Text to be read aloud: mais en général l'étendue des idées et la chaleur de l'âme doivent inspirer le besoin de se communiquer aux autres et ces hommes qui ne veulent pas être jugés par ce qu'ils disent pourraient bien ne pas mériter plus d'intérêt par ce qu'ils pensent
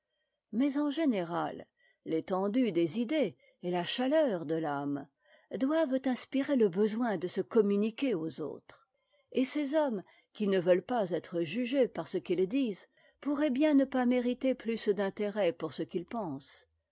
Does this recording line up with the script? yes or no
no